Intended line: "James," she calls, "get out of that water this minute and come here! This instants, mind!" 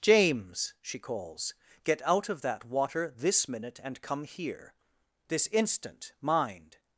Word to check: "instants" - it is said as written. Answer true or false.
false